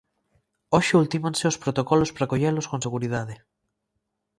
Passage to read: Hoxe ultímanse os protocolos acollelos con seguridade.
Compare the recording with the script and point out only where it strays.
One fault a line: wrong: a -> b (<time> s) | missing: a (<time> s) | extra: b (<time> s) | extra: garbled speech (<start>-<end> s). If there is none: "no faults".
extra: para (2.1 s)